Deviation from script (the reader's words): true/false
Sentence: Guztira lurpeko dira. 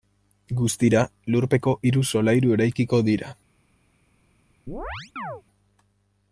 true